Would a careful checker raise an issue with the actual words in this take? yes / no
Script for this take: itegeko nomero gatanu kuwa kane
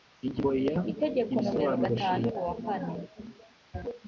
no